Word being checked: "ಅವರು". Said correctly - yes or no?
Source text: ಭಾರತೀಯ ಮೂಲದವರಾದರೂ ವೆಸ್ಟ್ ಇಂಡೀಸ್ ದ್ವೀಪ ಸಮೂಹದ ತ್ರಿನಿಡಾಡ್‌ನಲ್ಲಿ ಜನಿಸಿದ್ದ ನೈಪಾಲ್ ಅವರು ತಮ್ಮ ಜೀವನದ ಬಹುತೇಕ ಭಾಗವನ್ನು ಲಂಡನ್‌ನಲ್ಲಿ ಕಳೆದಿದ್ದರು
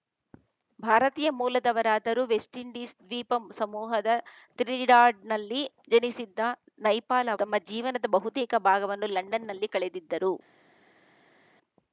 no